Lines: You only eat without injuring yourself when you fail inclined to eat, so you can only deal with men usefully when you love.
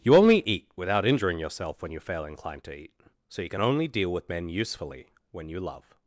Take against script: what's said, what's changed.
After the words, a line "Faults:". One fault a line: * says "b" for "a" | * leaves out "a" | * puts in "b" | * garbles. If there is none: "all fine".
You only eat without injuring yourself when you fail inclined to eat, so you can only deal with men usefully when you love.
Faults:
all fine